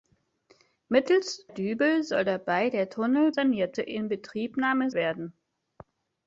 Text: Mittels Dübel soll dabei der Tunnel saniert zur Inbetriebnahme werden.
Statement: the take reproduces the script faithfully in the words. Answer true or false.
true